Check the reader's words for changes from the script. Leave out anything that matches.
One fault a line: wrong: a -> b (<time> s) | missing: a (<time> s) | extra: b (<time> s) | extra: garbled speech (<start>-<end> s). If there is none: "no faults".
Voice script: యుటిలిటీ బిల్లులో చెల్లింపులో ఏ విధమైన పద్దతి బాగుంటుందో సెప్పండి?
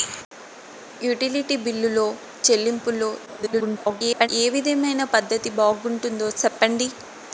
extra: garbled speech (3.3-4.3 s)